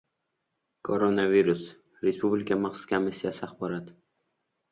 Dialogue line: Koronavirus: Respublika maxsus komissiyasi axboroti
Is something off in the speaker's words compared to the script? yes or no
no